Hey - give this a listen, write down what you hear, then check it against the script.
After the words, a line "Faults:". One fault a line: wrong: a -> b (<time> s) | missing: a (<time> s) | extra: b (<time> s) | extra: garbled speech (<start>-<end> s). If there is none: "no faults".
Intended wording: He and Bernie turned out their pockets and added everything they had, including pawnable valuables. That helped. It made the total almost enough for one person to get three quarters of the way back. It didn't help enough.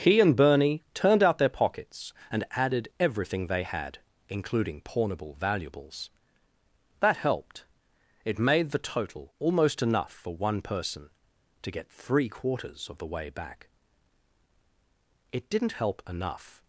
He and Bernie turned out their pockets and added everything they had, including pawnable valuables. That helped. It made the total almost enough for one person to get three quarters of the way back. It didn't help enough.
Faults:
no faults